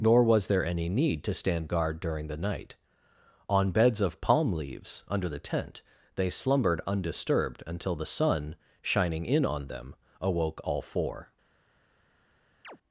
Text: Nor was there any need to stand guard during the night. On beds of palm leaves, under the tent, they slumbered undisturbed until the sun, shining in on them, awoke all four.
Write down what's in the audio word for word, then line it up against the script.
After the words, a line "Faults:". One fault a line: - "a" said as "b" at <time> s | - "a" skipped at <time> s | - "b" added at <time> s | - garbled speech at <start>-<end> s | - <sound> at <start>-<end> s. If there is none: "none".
Nor was there any need to stand guard during the night. On beds of palm leaves, under the tent, they slumbered undisturbed until the sun, shining in on them, awoke all four.
Faults:
- chirp at 12.6-12.8 s